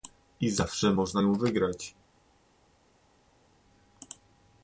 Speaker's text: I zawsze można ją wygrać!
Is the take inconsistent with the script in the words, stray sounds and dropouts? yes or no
no